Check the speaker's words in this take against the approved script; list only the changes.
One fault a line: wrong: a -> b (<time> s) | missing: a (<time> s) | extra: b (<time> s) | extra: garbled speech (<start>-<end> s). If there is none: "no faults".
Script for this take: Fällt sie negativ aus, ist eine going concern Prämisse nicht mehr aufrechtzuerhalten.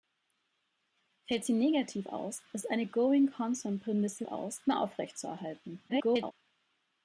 wrong: nicht -> aus (4.2 s)
extra: garbled speech (5.9-6.3 s)